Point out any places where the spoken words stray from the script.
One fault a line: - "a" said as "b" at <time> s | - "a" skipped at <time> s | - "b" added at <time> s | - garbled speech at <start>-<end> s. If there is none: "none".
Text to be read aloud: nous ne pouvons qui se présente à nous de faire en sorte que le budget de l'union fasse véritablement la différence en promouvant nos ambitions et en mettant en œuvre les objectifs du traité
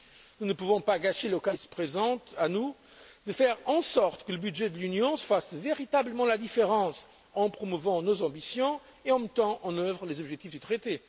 - "pas gâcher l'occasion" added at 0.8 s